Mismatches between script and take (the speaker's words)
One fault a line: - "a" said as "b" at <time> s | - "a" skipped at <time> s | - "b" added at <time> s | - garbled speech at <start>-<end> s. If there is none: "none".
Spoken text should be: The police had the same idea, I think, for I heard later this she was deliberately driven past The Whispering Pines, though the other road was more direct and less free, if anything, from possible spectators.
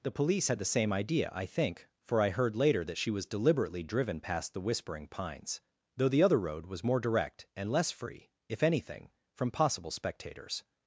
- "this" said as "that" at 2.9 s